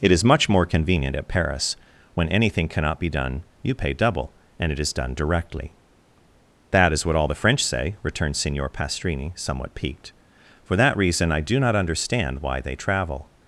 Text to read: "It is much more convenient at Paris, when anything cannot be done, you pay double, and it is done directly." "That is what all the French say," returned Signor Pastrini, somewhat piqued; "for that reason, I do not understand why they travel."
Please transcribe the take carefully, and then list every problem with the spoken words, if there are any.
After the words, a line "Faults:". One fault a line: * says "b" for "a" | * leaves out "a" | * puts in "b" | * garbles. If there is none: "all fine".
"It is much more convenient at Paris, when anything cannot be done, you pay double, and it is done directly." "That is what all the French say," returned Signor Pastrini, somewhat piqued; "for that reason, I do not understand why they travel."
Faults:
all fine